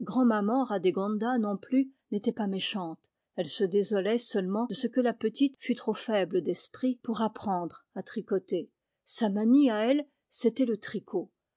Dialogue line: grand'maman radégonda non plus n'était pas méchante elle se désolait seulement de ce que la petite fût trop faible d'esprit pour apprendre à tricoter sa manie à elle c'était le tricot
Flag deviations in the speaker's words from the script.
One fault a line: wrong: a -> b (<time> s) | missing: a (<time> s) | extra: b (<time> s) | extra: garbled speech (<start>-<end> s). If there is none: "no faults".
no faults